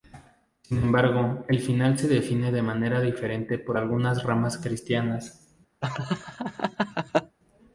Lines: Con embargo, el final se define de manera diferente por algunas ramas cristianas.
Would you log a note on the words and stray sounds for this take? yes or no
yes